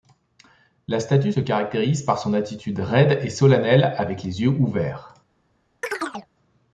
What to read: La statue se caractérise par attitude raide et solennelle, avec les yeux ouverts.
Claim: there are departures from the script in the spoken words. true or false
true